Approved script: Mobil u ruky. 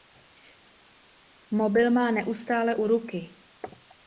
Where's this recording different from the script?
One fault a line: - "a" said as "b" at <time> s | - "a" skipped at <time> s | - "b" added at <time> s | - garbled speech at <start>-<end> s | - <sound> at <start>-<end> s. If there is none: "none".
- "má neustále" added at 1.9 s